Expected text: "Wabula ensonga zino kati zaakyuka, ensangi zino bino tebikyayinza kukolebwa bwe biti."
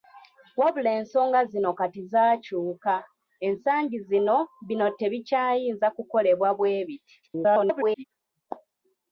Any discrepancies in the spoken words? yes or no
yes